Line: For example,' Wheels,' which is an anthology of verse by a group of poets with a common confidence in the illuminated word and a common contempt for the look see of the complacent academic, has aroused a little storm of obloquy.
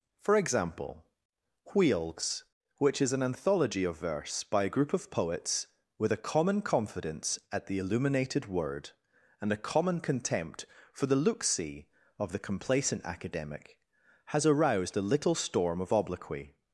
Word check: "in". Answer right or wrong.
wrong